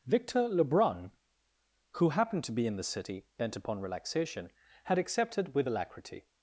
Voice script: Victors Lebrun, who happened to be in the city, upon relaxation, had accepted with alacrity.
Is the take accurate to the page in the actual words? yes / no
no